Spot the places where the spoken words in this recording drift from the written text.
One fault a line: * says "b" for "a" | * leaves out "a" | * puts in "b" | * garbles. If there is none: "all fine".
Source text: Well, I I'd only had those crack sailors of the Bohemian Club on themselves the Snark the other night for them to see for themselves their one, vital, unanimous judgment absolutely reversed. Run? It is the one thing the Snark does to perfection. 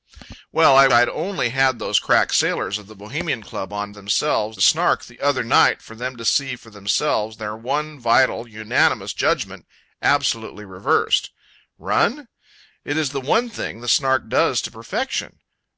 all fine